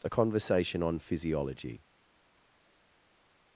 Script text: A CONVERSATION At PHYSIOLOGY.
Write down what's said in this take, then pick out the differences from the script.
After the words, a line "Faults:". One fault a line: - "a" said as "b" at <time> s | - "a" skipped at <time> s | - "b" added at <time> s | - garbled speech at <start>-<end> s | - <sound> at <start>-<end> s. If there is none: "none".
A CONVERSATION ON PHYSIOLOGY.
Faults:
- "At" said as "ON" at 0.8 s